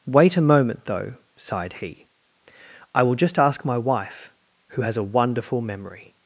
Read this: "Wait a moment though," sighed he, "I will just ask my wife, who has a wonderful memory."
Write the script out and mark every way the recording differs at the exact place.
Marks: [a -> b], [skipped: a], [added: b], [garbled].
"Wait a moment though," sighed he, "I will just ask my wife, who has a wonderful memory."